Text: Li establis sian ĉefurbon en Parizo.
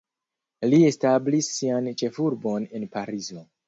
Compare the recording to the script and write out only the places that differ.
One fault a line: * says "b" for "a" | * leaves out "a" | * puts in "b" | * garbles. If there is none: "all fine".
all fine